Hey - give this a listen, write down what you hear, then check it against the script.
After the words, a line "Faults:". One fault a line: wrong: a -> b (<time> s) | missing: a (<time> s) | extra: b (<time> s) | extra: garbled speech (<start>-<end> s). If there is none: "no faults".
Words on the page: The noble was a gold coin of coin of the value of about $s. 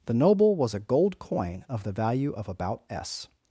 The noble was a gold coin of the value of about $s.
Faults:
missing: coin of (1.8 s)